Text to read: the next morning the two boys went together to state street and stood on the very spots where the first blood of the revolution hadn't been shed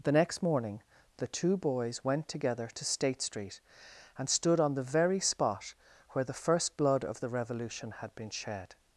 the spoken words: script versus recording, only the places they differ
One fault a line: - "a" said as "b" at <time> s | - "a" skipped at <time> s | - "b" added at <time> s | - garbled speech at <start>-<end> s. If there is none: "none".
- "spots" said as "spot" at 5.2 s
- "hadn't" said as "had" at 7.9 s